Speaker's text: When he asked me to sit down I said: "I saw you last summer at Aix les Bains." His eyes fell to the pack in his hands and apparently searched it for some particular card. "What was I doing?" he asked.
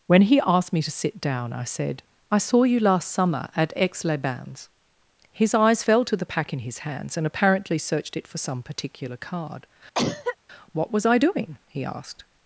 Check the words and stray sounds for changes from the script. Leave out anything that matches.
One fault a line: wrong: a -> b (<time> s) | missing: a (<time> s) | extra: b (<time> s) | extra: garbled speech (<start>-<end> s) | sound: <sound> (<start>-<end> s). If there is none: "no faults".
sound: cough (9.9-10.4 s)